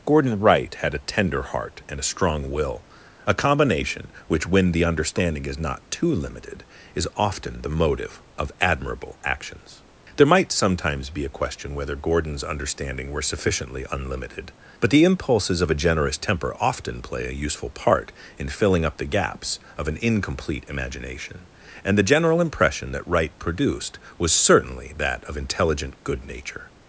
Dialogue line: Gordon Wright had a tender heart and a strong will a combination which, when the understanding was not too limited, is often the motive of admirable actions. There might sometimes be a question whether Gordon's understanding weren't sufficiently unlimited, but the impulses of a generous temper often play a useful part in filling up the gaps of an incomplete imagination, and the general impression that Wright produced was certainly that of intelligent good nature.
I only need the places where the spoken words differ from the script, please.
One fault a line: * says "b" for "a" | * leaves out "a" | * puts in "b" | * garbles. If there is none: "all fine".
* says "is" for "was"
* says "were" for "weren't"